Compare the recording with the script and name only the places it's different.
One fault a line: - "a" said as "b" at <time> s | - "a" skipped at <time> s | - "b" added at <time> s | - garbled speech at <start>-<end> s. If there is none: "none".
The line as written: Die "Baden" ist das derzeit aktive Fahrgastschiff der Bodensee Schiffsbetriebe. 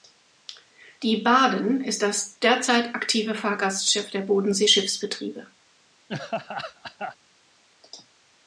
none